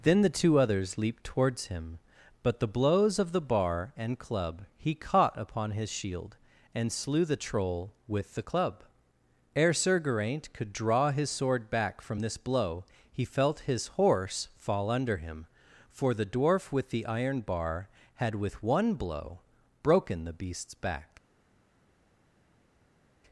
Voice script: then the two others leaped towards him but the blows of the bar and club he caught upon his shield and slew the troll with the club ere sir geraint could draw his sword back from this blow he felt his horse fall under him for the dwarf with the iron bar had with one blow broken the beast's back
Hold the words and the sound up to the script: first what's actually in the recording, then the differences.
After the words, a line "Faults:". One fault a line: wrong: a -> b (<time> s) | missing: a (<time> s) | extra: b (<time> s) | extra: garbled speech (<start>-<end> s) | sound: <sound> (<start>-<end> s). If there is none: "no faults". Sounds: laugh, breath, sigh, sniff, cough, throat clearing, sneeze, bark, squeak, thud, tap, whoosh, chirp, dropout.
then the two others leaped towards him but the blows of the bar and club he caught upon his shield and slew the troll with the club ere sir geraint could draw his sword back from this blow he felt his horse fall under him for the dwarf with the iron bar had with one blow broken the beast's back
Faults:
no faults